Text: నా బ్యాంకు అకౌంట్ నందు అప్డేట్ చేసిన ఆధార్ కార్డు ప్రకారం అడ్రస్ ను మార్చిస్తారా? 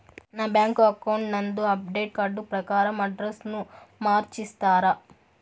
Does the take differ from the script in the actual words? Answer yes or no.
yes